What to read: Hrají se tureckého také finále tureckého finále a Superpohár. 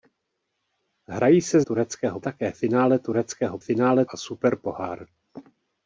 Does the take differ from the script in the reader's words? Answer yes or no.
no